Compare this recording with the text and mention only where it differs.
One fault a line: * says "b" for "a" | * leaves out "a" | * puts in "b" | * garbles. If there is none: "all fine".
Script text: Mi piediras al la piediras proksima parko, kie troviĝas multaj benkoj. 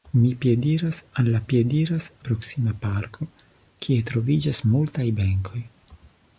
all fine